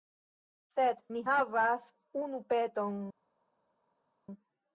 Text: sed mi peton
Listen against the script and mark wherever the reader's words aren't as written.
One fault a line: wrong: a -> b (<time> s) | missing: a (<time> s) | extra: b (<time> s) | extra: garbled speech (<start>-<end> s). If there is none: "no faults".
extra: havas unu (1.3 s)